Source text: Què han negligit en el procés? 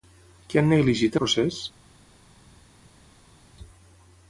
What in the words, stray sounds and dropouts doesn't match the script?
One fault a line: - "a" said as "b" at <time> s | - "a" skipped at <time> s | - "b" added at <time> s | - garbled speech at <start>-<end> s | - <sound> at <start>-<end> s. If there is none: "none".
- "en" skipped at 1.2 s